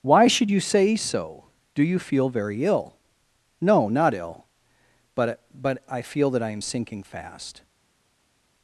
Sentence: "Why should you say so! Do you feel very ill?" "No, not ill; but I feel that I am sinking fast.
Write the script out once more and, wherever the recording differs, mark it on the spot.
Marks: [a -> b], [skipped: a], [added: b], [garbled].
"Why should you say so! Do you feel very ill?" "No, not ill; but [added: but] I feel that I am sinking fast.